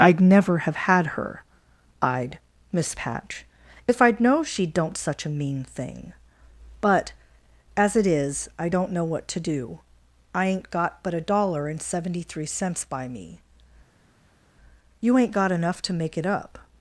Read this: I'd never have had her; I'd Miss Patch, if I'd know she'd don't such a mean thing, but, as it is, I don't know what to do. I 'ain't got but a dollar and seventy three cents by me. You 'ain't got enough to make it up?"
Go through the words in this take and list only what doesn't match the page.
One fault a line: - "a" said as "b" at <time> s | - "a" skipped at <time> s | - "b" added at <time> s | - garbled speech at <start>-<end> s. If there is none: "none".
none